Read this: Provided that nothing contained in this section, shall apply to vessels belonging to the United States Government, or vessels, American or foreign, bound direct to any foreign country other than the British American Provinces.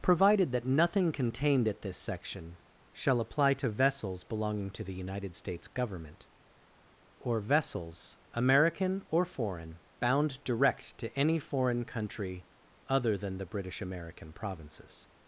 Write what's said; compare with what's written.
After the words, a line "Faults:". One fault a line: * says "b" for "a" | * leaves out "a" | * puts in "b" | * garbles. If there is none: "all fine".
Provided that nothing contained at this section, shall apply to vessels belonging to the United States Government, or vessels, American or foreign, bound direct to any foreign country other than the British American Provinces.
Faults:
* says "at" for "in"